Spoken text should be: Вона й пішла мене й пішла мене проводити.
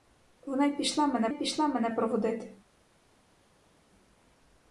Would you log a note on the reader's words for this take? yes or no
no